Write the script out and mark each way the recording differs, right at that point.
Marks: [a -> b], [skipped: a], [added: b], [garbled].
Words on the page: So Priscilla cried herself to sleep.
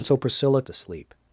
So Priscilla [skipped: cried herself] to sleep.